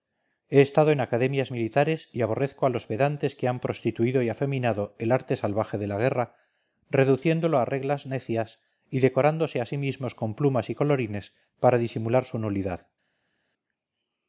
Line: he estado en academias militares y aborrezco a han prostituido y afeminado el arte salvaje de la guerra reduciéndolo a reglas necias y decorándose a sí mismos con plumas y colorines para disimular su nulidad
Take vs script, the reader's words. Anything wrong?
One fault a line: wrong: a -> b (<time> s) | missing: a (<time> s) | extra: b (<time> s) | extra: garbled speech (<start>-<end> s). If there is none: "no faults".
extra: los pedantes que (2.7 s)